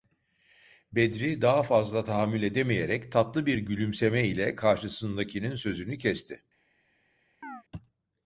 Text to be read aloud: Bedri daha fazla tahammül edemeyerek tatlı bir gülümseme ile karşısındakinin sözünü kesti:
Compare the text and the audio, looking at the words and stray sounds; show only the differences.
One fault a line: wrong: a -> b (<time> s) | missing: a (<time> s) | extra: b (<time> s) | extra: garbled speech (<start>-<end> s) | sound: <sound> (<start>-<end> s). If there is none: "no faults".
sound: chirp (7.4-7.6 s)